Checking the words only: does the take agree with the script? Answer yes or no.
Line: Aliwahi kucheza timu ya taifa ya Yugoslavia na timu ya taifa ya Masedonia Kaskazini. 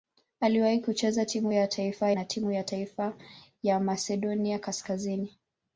no